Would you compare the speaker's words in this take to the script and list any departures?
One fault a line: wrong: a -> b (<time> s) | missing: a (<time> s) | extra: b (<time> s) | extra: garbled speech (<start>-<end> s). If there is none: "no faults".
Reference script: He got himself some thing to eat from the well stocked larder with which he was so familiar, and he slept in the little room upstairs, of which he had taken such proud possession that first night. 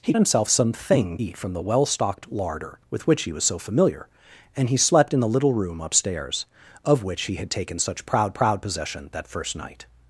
missing: got (0.1 s)
missing: to (1.2 s)
extra: proud (8.3 s)